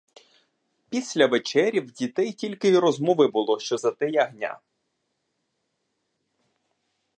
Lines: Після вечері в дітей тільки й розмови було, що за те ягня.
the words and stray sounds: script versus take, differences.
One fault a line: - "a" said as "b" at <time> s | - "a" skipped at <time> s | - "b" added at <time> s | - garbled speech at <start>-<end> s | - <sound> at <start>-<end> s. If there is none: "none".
none